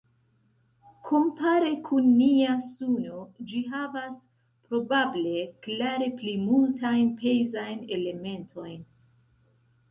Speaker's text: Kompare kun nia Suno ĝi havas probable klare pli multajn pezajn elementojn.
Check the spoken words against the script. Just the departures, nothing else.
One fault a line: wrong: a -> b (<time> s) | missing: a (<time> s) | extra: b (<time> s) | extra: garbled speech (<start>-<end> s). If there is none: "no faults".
no faults